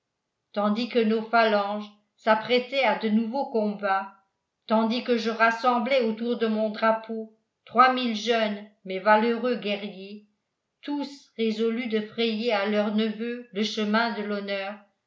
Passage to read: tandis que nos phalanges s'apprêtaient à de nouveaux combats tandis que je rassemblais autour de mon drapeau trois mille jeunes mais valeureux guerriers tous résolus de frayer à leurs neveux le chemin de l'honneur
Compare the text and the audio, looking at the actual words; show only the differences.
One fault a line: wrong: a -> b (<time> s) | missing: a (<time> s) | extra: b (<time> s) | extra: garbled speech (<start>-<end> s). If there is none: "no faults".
no faults